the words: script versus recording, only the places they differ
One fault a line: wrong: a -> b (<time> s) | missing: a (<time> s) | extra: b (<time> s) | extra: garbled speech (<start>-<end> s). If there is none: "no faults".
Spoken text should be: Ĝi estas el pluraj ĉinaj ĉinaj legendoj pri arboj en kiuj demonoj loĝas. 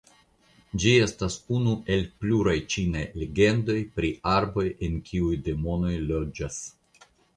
extra: unu (1.6 s)
missing: ĉinaj (3.0 s)